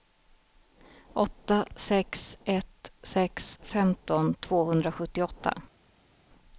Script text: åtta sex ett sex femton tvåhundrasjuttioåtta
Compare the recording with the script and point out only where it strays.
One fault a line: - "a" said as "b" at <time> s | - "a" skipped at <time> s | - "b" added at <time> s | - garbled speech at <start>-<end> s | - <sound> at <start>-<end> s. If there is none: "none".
none